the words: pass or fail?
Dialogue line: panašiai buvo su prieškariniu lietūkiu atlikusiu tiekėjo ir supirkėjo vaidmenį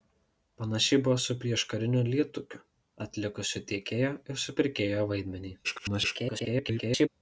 fail